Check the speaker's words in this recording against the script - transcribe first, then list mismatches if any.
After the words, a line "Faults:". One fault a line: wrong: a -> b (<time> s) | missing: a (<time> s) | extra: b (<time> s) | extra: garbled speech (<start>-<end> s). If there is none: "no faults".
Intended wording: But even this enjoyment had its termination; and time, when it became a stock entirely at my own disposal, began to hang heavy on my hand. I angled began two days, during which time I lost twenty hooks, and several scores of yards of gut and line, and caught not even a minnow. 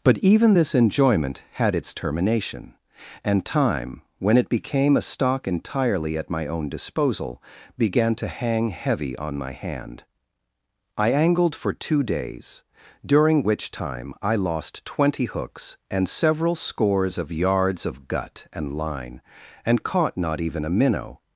But even this enjoyment had its termination; and time, when it became a stock entirely at my own disposal, began to hang heavy on my hand. I angled for two days, during which time I lost twenty hooks, and several scores of yards of gut and line, and caught not even a minnow.
Faults:
wrong: began -> for (11.6 s)